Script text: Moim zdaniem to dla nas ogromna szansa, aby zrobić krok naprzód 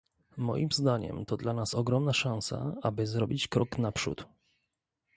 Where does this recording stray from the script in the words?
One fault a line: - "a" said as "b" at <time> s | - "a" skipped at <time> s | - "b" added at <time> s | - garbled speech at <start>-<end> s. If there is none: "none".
none